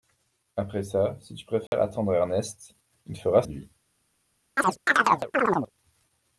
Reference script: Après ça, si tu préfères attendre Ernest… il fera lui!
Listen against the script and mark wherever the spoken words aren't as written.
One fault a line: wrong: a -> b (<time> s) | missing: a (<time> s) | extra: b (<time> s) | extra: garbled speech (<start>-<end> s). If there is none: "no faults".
no faults